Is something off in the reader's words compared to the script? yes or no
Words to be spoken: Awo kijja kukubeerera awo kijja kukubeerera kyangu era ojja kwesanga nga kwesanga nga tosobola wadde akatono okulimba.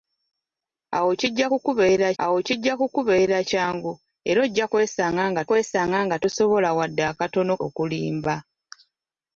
no